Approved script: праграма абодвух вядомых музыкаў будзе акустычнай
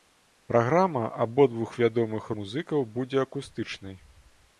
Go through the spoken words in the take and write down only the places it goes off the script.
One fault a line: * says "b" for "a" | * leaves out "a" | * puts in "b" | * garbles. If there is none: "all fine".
all fine